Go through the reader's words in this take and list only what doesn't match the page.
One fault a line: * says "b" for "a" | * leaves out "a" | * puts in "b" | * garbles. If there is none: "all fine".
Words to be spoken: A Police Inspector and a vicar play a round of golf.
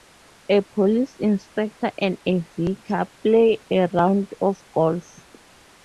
all fine